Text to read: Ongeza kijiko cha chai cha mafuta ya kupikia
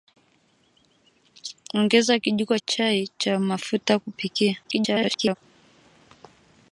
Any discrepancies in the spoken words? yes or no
yes